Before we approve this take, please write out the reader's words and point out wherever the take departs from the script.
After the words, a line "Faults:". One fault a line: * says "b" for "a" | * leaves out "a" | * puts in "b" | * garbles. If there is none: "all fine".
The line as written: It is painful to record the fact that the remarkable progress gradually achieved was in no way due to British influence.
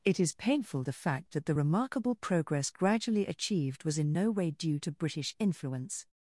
It is painful the fact that the remarkable progress gradually achieved was in no way due to British influence.
Faults:
* leaves out "to record"